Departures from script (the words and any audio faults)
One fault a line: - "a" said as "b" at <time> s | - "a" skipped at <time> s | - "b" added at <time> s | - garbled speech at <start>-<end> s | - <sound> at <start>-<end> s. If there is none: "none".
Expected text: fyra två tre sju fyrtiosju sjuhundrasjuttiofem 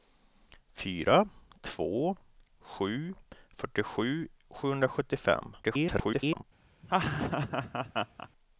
- "tre" skipped at 2.2 s
- garbled speech at 5.6-6.4 s
- laugh at 6.8-8.3 s